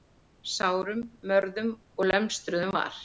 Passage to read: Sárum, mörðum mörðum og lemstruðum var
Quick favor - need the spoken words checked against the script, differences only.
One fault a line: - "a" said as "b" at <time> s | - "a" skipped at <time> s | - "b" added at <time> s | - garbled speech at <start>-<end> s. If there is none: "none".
- "mörðum" skipped at 1.7 s